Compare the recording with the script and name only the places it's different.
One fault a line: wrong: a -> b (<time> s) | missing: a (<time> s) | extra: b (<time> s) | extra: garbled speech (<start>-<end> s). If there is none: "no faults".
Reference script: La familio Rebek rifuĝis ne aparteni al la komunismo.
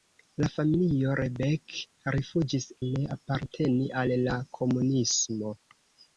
no faults